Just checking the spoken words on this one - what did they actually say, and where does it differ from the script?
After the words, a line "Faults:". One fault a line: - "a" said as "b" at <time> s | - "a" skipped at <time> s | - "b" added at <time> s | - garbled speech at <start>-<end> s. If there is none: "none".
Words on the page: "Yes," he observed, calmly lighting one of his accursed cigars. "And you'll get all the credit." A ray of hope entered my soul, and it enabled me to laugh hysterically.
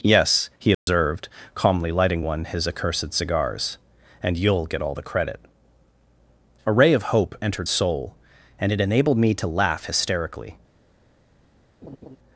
"Yes," he observed, calmly lighting one his accursed cigars. "And you'll get all the credit." A ray of hope entered soul, and it enabled me to laugh hysterically.
Faults:
- "of" skipped at 2.4 s
- "my" skipped at 7.7 s